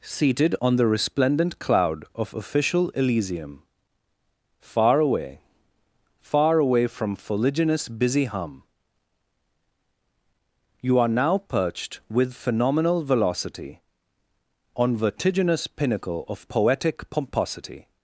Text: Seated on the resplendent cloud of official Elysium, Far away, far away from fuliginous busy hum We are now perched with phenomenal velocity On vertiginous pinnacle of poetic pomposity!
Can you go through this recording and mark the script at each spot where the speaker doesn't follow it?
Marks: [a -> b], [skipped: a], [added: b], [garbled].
Seated on the resplendent cloud of official Elysium, Far away, far away from fuliginous busy hum [We -> You] are now perched with phenomenal velocity On vertiginous pinnacle of poetic pomposity!